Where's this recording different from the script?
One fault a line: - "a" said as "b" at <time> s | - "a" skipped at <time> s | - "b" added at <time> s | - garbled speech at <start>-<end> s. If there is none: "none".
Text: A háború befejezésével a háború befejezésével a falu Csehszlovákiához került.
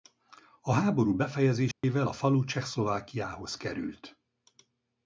- "háború befejezésével a" skipped at 2.1 s